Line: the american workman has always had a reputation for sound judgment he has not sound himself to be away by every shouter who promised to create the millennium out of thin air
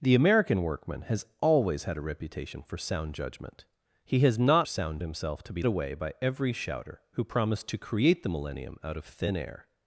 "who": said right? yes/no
yes